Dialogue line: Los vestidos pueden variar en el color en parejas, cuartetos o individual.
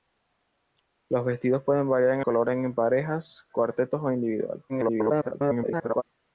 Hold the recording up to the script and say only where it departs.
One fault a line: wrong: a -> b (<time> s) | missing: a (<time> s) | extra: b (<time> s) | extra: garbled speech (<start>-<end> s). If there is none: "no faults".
missing: el (2.2 s)
extra: garbled speech (4.7-6.0 s)